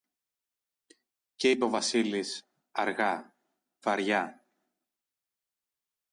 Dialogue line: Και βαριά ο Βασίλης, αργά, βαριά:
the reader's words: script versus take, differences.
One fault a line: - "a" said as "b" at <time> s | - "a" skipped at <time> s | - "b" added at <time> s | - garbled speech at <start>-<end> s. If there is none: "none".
- "βαριά" said as "είπε" at 1.5 s